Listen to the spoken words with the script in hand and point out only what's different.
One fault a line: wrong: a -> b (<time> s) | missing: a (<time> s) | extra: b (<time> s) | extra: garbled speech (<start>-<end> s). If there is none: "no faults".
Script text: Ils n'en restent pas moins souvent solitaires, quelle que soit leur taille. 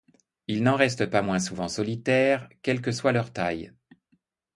no faults